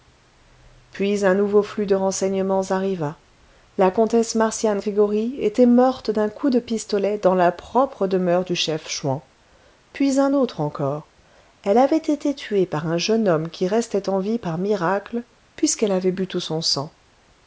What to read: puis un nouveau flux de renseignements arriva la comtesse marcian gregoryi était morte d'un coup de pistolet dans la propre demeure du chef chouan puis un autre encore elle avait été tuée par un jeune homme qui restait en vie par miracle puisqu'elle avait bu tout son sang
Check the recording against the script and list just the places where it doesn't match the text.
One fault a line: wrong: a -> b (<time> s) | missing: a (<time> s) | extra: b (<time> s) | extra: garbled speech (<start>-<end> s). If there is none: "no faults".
no faults